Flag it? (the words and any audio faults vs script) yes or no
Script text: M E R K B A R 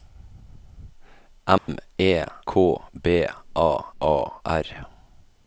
yes